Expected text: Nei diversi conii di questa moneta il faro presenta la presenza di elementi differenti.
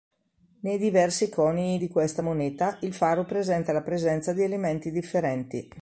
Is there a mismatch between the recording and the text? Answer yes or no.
no